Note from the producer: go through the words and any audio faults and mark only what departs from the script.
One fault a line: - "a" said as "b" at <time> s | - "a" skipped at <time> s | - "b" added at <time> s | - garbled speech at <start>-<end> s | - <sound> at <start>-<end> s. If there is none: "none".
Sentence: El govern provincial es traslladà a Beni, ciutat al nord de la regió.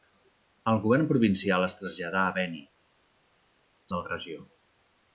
- "ciutat al nord" skipped at 2.6 s